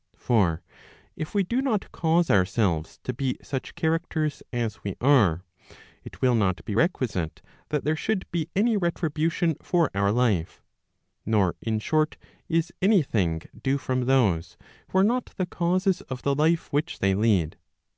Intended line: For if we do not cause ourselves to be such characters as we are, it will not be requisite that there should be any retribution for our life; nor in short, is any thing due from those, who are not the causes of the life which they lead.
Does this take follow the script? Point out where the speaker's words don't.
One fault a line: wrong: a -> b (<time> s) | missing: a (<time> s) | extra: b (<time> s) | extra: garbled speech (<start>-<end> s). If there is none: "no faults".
no faults